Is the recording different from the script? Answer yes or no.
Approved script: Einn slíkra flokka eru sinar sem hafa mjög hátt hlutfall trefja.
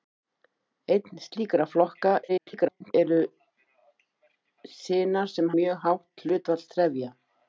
yes